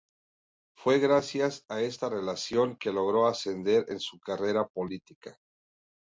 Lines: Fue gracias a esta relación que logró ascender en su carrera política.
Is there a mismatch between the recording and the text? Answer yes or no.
no